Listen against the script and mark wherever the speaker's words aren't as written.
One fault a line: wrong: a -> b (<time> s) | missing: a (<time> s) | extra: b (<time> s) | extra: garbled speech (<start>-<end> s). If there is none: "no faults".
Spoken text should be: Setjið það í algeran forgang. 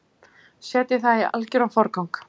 no faults